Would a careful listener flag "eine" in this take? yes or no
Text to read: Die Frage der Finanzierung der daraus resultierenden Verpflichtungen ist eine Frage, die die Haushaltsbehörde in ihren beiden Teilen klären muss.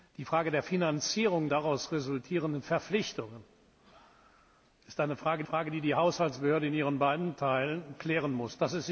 no